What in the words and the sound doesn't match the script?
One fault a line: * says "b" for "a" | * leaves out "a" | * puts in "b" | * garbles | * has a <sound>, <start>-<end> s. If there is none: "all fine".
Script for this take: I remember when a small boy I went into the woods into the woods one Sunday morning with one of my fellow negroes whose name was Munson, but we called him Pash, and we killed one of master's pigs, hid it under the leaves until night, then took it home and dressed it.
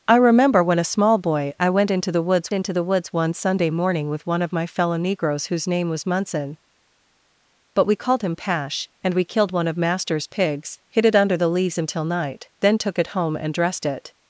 all fine